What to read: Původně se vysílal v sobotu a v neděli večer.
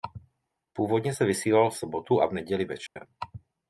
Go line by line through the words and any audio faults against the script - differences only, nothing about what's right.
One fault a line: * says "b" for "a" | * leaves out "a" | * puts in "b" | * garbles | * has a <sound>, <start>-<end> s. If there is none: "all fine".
* has a dropout, 2.9-3.0 s